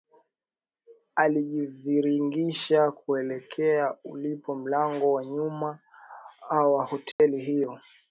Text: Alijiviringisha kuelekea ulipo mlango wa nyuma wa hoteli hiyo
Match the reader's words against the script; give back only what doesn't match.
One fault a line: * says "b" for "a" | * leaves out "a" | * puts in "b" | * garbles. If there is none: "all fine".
all fine